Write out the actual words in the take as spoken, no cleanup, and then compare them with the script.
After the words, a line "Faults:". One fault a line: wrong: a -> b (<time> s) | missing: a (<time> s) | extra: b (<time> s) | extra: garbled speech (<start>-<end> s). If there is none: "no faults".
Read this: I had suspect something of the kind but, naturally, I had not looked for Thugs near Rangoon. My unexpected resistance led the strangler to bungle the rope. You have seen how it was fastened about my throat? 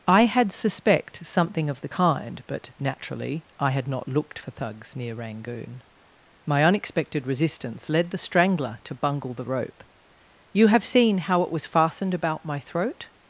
I had suspect something of the kind but, naturally, I had not looked for Thugs near Rangoon. My unexpected resistance led the strangler to bungle the rope. You have seen how it was fastened about my throat?
Faults:
no faults